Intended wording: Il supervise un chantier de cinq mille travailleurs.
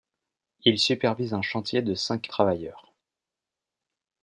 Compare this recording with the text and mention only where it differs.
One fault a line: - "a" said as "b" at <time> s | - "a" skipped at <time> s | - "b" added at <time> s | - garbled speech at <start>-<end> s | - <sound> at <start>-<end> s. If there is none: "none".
- "mille" skipped at 2.3 s